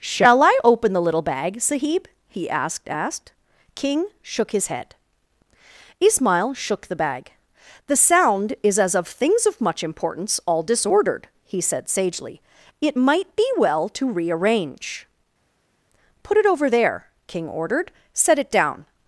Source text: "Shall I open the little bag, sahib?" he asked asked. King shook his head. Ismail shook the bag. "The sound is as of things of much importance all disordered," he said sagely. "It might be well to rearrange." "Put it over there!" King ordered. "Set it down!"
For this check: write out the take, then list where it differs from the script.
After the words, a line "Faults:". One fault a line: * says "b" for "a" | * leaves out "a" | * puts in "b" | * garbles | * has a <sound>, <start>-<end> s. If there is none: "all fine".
"Shall I open the little bag, sahib?" he asked asked. King shook his head. Ismail shook the bag. "The sound is as of things of much importance all disordered," he said sagely. "It might be well to rearrange." "Put it over there!" King ordered. "Set it down!"
Faults:
all fine